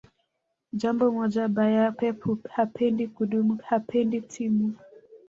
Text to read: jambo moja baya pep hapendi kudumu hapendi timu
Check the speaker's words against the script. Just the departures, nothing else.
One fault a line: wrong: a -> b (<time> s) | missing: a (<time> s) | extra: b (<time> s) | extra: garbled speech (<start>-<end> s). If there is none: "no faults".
no faults